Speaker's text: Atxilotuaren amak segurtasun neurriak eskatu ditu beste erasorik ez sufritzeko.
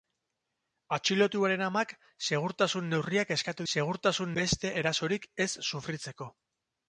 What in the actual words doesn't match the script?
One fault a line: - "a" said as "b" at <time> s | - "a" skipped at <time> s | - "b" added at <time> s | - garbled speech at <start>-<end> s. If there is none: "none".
- "ditu" said as "segurtasun" at 3.7 s